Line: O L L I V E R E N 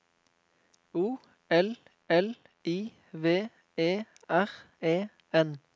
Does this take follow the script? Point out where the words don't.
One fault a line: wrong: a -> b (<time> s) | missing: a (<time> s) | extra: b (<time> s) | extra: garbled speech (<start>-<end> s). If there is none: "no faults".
no faults